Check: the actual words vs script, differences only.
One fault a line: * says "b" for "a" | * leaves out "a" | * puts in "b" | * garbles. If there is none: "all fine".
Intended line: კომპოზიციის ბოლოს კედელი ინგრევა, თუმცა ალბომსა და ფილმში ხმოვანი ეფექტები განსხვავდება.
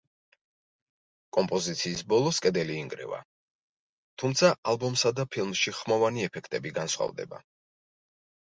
all fine